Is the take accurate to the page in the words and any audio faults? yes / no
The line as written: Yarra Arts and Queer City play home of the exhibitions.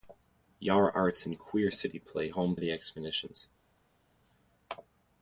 yes